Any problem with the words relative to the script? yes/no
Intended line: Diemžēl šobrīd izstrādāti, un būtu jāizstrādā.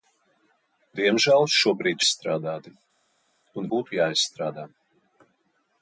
no